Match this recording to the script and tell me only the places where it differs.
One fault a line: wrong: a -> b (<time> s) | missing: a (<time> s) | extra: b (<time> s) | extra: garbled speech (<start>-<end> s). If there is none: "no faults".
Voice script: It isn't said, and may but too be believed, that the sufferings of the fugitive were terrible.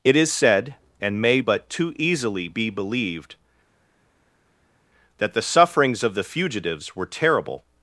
wrong: isn't -> is (0.1 s)
extra: easily (2.0 s)
wrong: fugitive -> fugitives (6.2 s)